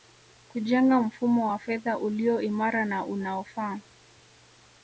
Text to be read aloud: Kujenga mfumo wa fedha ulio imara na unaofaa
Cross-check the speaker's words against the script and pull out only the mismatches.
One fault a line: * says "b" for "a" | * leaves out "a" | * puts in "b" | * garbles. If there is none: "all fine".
all fine